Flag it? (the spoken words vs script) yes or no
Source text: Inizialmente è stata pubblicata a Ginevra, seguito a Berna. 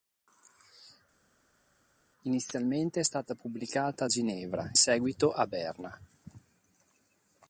no